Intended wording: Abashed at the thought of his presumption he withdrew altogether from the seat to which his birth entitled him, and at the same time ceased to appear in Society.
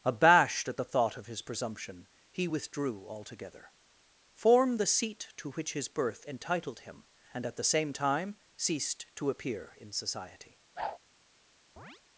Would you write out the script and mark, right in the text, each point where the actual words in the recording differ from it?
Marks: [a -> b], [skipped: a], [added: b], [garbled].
Abashed at the thought of his presumption he withdrew altogether [from -> form] the seat to which his birth entitled him, and at the same time ceased to appear in Society.